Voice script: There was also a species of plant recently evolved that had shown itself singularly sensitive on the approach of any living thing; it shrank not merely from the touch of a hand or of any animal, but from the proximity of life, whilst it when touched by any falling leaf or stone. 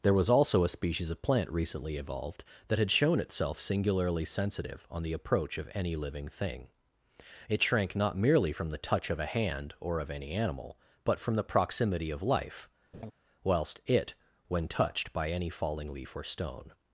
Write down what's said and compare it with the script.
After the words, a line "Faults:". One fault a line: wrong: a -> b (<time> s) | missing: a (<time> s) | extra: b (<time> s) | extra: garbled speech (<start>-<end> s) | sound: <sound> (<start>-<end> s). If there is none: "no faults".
There was also a species of plant recently evolved that had shown itself singularly sensitive on the approach of any living thing; it shrank not merely from the touch of a hand or of any animal, but from the proximity of life, whilst it when touched by any falling leaf or stone.
Faults:
sound: laugh (12.9-13.1 s)